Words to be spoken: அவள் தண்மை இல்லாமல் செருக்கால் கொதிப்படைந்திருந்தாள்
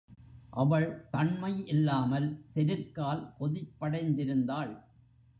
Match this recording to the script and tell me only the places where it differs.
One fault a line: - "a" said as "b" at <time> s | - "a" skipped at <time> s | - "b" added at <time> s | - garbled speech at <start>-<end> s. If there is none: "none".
none